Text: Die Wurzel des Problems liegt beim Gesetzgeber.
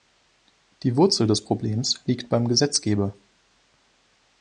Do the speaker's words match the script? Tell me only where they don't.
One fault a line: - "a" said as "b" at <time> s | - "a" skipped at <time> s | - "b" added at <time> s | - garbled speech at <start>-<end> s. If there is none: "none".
none